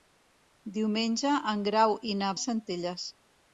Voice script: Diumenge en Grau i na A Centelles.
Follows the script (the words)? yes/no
yes